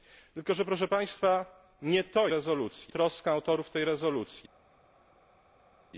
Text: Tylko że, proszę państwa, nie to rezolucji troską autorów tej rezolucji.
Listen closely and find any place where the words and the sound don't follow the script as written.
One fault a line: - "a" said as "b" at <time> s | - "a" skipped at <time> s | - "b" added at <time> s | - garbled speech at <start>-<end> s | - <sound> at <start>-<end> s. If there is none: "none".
none